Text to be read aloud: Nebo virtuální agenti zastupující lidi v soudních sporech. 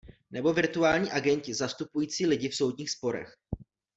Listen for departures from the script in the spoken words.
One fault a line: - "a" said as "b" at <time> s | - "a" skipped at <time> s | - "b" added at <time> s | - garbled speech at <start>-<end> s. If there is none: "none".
none